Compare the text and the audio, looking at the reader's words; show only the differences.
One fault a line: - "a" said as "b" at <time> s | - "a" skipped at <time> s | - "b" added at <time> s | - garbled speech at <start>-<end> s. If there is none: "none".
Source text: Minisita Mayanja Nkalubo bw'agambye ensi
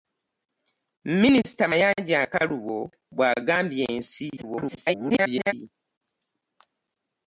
- garbled speech at 4.4-5.5 s